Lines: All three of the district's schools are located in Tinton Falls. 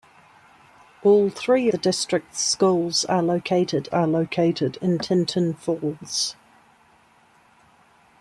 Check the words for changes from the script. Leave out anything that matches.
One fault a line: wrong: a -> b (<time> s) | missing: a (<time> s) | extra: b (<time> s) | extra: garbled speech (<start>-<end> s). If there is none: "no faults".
missing: of (1.7 s)
extra: are located (3.9 s)